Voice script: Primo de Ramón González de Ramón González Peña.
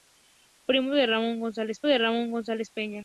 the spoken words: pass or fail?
pass